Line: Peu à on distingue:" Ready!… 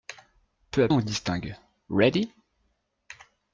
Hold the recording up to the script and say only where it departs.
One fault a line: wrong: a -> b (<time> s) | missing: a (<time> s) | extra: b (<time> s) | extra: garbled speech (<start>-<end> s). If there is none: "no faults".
no faults